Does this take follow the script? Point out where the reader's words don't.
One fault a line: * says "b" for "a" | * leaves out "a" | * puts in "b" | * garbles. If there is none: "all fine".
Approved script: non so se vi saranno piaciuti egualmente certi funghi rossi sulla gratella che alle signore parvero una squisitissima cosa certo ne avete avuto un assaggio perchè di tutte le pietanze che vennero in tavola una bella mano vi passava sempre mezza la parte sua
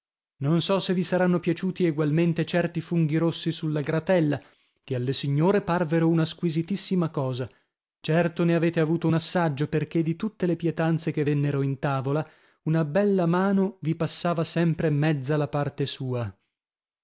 all fine